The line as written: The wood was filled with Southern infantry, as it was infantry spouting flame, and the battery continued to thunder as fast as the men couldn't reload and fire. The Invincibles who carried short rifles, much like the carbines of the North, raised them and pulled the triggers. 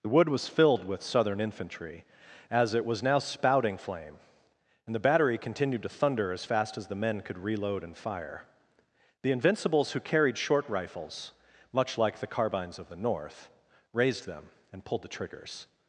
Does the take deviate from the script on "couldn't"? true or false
true